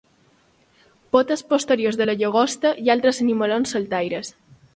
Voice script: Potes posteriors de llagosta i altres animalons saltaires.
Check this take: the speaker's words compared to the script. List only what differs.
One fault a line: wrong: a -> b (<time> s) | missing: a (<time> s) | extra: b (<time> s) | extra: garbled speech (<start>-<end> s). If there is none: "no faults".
extra: la (2.0 s)